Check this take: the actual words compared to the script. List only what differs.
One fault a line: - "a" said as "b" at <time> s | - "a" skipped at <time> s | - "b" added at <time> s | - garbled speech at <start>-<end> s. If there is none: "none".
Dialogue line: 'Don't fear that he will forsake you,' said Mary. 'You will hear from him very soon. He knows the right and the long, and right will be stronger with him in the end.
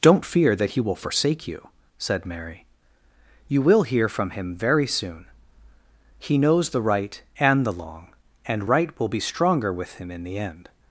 none